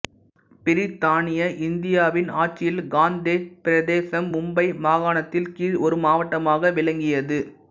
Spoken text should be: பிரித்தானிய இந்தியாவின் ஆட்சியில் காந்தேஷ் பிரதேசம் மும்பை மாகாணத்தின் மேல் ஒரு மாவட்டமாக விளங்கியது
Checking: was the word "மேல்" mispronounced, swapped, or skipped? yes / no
yes